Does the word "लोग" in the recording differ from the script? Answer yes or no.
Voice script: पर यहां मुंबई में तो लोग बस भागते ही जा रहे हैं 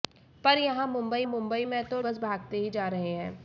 yes